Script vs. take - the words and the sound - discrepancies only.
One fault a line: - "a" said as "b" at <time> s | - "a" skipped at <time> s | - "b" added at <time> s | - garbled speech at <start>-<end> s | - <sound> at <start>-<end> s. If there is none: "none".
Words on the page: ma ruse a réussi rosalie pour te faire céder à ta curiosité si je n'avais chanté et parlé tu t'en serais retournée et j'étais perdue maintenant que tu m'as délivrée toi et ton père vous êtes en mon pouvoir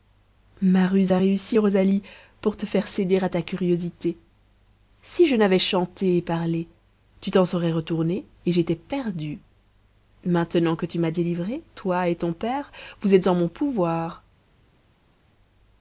none